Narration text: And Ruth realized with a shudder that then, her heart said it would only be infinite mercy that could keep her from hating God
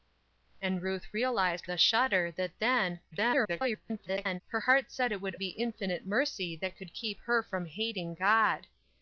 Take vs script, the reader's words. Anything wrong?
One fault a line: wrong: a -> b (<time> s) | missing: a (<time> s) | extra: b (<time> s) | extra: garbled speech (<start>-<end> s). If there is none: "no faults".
missing: with (1.7 s)
extra: garbled speech (3.1-4.4 s)
missing: only (5.4 s)